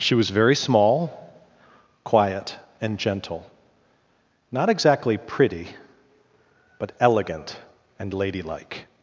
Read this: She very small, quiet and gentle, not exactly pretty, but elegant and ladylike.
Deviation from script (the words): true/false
true